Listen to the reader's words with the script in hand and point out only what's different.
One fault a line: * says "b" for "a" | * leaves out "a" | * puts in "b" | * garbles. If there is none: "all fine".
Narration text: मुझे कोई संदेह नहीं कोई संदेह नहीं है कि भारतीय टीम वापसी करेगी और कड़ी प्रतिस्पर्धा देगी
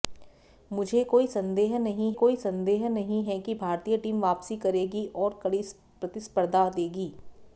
all fine